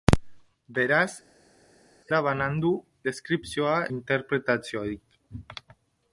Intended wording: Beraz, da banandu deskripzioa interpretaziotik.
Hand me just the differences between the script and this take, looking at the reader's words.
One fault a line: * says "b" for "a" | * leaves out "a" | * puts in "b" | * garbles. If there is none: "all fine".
all fine